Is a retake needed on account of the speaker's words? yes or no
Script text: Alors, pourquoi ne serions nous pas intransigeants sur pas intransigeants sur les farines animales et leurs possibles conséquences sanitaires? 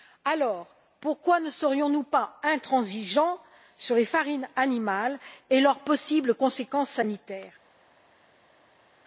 yes